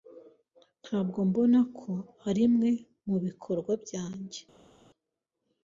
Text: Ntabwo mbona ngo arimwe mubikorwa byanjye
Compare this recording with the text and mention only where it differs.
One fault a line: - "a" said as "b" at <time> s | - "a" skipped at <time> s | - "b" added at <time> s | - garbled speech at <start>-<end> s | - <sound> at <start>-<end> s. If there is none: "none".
- "ngo" said as "ko" at 1.8 s